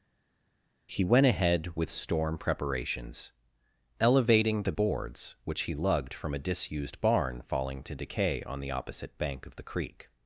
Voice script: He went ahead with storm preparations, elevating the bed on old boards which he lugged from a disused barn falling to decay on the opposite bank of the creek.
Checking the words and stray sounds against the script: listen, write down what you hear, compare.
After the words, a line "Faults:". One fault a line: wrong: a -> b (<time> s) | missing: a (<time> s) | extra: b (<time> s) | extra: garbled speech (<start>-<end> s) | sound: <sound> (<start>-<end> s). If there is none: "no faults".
He went ahead with storm preparations, elevating the boards which he lugged from a disused barn falling to decay on the opposite bank of the creek.
Faults:
missing: bed on old (4.7 s)